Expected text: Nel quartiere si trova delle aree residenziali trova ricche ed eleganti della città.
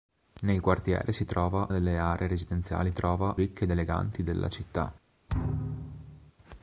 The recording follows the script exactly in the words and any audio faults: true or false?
false